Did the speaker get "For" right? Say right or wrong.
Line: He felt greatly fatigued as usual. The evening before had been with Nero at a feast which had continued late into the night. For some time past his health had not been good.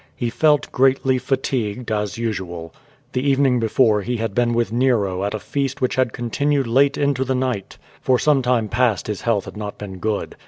right